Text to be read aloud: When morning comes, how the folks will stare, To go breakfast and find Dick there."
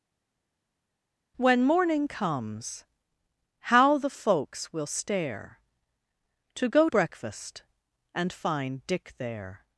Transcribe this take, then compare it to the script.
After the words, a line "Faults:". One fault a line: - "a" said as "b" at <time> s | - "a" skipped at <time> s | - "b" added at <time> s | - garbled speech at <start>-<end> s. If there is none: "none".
When morning comes, how the folks will stare, To go breakfast and find Dick there."
Faults:
none